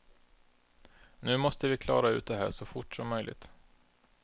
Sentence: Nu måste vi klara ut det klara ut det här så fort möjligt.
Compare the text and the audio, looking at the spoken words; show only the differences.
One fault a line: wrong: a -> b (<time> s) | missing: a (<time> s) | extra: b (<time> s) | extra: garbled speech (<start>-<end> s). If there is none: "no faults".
missing: klara ut det (2.4 s)
extra: som (3.0 s)